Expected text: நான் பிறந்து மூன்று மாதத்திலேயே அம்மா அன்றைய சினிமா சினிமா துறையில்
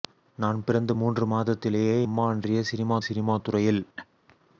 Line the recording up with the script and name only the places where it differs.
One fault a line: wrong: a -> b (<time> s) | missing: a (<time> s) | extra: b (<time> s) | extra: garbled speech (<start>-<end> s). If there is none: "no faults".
no faults